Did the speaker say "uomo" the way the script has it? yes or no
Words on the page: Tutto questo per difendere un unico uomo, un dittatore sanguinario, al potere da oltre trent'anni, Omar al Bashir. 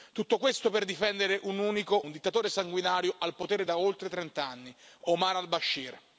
no